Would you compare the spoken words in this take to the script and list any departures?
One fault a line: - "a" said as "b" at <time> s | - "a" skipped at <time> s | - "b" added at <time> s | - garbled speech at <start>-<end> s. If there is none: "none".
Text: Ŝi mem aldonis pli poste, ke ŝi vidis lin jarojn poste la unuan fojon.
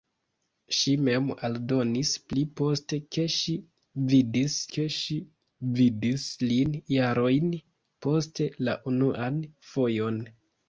- "ke ŝi vidis" added at 4.8 s